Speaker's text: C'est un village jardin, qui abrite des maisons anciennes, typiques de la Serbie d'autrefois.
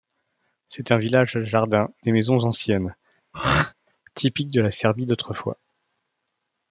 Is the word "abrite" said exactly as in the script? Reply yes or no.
no